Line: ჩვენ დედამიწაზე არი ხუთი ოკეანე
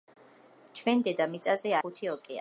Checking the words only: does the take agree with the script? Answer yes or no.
no